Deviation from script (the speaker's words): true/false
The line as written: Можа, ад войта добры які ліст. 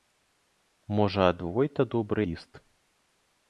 true